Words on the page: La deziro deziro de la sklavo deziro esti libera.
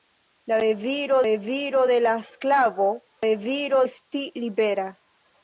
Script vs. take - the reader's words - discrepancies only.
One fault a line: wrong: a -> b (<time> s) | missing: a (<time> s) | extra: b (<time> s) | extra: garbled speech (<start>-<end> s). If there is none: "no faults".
no faults